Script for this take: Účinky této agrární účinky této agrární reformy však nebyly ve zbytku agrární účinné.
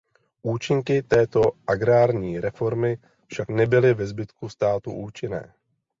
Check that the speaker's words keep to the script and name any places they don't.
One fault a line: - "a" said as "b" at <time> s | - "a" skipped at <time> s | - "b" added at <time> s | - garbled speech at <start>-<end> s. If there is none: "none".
- "účinky této agrární" skipped at 2.4 s
- "agrární" said as "státu" at 4.5 s